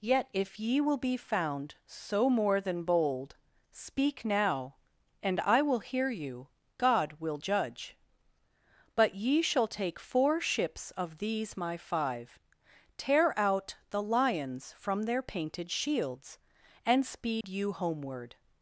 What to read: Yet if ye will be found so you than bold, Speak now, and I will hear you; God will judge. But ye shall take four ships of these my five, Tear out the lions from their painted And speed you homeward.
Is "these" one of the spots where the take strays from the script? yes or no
no